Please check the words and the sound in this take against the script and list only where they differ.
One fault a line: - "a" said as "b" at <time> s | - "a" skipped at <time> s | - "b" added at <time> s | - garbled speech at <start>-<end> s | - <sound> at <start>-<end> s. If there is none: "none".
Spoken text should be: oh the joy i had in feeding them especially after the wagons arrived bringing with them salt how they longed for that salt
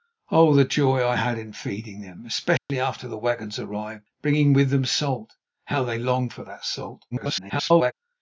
- dropout at 2.6-2.7 s
- garbled speech at 7.1-7.9 s